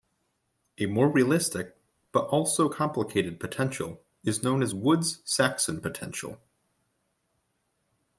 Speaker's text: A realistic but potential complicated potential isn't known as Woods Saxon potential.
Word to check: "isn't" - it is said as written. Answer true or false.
false